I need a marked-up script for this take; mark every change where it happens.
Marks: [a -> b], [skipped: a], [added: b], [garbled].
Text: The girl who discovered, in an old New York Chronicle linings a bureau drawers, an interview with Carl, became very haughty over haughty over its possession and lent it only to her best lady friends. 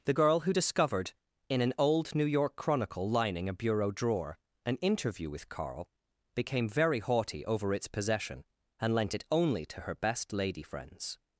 The girl who discovered, in an old New York Chronicle [linings -> lining] a bureau [drawers, -> drawer] an interview with Carl, became very haughty over [skipped: haughty over] its possession and lent it only to her best lady friends.